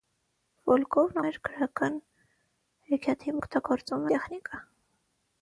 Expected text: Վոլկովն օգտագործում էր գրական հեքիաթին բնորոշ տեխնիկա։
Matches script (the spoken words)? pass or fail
fail